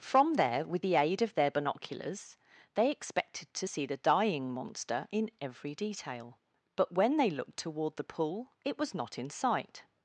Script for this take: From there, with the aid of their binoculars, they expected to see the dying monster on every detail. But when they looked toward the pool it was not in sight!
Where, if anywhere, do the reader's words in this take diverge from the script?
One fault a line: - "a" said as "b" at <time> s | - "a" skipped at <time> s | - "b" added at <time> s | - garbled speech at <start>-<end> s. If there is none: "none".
- "on" said as "in" at 5.1 s